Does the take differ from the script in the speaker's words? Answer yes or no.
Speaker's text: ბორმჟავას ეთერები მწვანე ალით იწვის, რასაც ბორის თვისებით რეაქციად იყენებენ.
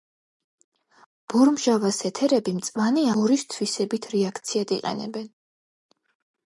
yes